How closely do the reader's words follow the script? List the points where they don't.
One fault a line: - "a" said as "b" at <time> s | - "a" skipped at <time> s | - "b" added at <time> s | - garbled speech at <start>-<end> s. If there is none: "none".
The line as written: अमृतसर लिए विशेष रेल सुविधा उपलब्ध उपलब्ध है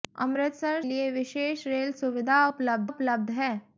none